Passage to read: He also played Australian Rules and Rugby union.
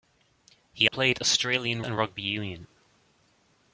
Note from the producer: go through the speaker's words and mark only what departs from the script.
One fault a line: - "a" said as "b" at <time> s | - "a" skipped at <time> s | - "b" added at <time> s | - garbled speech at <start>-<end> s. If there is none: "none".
- "also" skipped at 0.9 s
- "Rules" skipped at 1.8 s